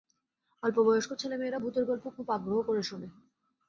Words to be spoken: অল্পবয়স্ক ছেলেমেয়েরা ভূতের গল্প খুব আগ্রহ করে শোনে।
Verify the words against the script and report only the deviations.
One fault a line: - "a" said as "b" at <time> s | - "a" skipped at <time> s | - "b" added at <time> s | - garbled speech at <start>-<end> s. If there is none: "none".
none